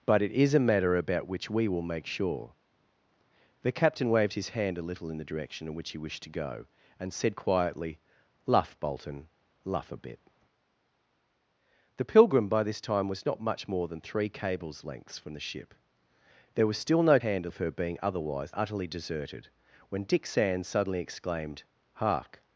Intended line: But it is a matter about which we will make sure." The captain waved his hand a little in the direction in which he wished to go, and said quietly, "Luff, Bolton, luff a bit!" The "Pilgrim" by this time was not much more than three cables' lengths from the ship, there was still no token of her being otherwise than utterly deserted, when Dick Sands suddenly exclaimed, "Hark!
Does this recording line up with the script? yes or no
no